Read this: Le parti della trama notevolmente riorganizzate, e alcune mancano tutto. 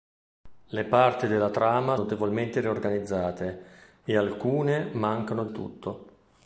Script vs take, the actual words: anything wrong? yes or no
no